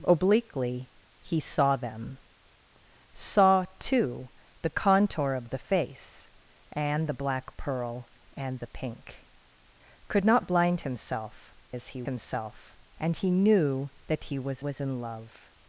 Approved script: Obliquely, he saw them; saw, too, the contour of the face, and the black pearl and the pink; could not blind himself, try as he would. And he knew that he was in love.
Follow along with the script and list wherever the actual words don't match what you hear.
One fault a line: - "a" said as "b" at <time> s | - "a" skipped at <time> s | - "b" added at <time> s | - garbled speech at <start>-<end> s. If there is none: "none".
- "try" skipped at 11.5 s
- "would" said as "himself" at 12.0 s
- "was" added at 14.6 s